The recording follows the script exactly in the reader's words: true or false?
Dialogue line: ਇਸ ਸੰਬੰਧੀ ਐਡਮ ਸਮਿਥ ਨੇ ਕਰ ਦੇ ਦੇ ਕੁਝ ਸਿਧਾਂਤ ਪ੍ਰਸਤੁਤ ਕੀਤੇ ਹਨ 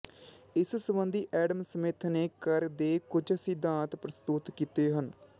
false